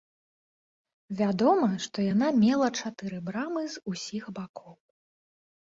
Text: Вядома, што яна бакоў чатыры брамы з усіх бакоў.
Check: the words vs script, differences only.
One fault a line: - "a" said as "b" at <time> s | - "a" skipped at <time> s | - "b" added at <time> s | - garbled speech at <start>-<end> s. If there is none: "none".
- "бакоў" said as "мела" at 2.5 s